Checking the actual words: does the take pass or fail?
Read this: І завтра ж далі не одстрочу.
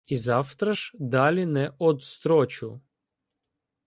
pass